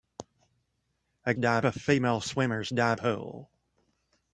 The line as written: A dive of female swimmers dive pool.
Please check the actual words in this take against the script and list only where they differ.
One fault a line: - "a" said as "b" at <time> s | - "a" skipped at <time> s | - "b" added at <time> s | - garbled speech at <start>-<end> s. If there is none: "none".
none